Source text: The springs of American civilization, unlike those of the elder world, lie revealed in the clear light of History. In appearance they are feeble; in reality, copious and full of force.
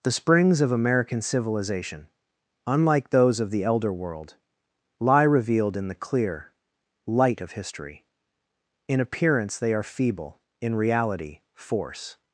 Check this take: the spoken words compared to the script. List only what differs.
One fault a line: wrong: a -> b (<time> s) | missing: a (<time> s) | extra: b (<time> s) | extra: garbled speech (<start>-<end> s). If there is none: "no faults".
missing: copious and full of (11.4 s)